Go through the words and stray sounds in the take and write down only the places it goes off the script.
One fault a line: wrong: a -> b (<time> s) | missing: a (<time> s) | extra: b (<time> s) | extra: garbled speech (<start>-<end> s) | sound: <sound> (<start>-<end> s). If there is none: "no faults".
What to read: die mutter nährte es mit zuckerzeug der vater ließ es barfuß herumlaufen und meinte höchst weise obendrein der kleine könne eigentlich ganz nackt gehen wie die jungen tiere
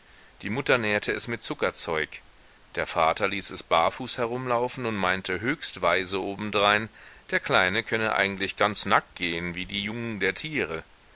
extra: der (10.2 s)